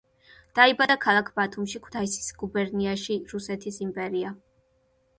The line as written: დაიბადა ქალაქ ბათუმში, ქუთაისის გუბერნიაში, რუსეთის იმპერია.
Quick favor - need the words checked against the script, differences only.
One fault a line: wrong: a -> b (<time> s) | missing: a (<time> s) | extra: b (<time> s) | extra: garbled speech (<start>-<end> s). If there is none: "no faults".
no faults